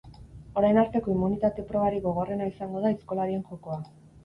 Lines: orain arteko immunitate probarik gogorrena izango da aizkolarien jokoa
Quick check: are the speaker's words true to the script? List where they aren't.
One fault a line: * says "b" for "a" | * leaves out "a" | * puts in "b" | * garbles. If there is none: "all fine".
all fine